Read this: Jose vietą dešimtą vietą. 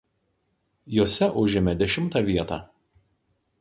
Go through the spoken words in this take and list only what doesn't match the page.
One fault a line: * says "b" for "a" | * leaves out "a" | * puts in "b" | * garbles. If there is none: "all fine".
* says "užėmė" for "vietą"